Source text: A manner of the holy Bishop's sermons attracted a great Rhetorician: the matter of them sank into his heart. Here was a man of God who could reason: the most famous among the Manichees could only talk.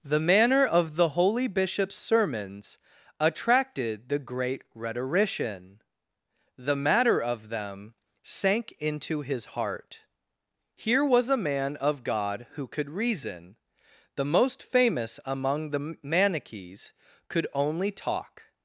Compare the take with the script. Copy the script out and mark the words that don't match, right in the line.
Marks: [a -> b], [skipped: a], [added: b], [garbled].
[A -> The] manner of the holy Bishop's sermons attracted [a -> the] great Rhetorician: the matter of them sank into his heart. Here was a man of God who could reason: the most famous among the Manichees could only talk.